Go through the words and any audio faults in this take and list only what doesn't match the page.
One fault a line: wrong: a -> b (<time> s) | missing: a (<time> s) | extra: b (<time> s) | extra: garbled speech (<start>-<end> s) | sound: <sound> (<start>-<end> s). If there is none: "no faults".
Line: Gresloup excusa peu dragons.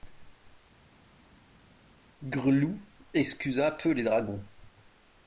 extra: les (3.9 s)